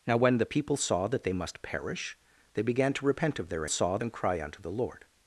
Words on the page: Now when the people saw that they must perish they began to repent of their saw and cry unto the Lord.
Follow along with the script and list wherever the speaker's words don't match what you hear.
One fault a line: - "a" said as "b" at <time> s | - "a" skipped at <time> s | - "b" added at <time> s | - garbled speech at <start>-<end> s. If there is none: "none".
none